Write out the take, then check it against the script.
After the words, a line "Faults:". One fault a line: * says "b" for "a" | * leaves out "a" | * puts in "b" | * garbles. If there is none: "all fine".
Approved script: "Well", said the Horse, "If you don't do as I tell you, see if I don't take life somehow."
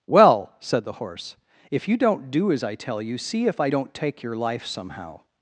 "Well", said the Horse, "If you don't do as I tell you, see if I don't take your life somehow."
Faults:
* puts in "your"